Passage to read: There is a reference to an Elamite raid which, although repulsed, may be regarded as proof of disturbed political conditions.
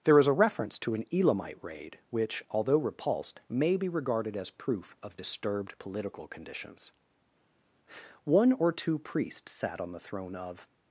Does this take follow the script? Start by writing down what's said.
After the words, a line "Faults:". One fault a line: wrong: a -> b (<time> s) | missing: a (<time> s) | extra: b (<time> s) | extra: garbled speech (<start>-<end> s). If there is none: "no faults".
There is a reference to an Elamite raid which, although repulsed, may be regarded as proof of disturbed political conditions. One or two priests sat on the throne of
Faults:
extra: One or two priests sat on the throne of (8.2 s)